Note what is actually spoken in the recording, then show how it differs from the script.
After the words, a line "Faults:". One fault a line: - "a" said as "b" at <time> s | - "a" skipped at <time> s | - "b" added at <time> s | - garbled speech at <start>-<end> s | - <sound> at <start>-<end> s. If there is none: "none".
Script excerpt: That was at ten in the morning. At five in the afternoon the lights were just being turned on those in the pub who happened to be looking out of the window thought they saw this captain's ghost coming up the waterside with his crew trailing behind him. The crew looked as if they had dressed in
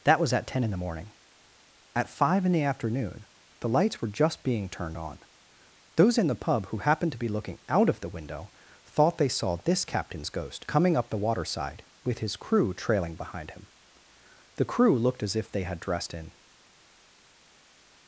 That was at ten in the morning. At five in the afternoon the lights were just being turned on those in the pub who happened to be looking out of the window thought they saw this captain's ghost coming up the waterside with his crew trailing behind him. The crew looked as if they had dressed in
Faults:
none